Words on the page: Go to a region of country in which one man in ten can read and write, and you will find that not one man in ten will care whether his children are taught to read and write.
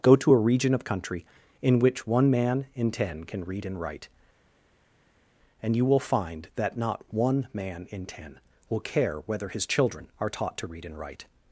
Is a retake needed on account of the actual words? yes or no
no